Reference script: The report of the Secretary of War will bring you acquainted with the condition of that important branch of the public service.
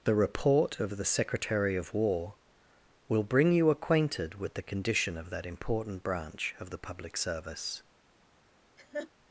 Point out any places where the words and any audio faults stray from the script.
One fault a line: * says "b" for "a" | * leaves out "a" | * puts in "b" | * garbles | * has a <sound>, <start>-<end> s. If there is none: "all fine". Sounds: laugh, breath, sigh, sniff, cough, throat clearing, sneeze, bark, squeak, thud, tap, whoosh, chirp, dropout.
* has a laugh, 8.8-9.1 s